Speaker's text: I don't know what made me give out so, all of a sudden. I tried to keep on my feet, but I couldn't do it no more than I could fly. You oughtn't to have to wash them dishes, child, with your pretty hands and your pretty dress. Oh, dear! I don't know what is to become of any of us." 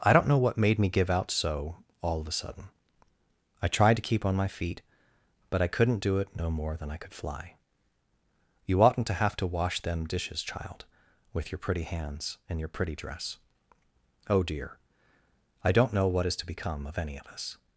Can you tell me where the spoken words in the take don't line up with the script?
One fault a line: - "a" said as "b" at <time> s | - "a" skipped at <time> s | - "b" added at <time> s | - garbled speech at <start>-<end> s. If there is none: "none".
none